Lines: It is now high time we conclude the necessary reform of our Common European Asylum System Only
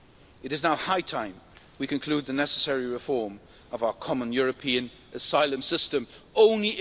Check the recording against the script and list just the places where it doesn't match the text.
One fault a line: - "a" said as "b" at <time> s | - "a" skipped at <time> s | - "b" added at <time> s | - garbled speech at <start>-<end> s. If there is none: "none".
none